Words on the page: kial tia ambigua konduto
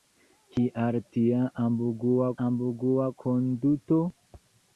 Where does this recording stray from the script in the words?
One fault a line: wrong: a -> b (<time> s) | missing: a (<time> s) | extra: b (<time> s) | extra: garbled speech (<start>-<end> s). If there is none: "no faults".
extra: ambigua (2.5 s)